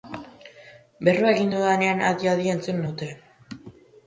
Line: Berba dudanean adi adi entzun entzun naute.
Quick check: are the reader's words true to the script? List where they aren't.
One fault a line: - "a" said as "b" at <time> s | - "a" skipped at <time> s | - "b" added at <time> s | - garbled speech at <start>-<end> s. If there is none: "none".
- "egin" added at 1.3 s
- "entzun" skipped at 2.8 s